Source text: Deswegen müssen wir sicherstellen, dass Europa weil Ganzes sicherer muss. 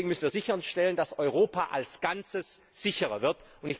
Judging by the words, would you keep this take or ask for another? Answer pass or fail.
fail